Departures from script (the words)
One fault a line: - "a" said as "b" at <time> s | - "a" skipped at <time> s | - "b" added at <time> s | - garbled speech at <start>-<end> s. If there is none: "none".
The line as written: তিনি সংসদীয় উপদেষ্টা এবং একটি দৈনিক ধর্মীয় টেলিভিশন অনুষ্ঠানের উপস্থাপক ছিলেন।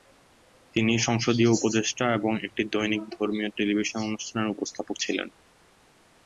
none